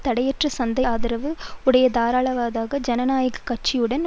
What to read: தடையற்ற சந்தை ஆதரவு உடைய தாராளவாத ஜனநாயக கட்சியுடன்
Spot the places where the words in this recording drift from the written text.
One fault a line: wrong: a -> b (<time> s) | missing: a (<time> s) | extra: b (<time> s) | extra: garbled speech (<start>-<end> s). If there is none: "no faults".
no faults